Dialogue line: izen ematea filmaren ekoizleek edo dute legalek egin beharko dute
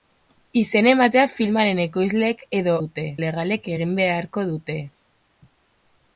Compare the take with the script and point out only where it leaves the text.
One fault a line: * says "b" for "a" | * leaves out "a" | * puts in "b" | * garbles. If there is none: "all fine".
all fine